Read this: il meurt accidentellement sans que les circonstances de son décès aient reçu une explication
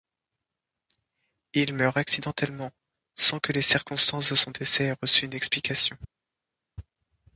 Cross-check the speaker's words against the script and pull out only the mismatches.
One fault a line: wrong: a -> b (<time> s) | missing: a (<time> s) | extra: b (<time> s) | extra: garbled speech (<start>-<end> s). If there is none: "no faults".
no faults